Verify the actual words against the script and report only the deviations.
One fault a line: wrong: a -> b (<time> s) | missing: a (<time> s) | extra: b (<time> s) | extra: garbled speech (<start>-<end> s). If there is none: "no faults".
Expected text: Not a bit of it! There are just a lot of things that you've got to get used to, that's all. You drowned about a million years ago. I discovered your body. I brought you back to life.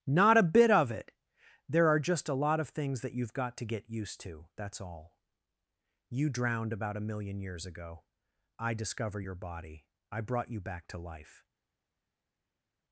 wrong: discovered -> discover (8.7 s)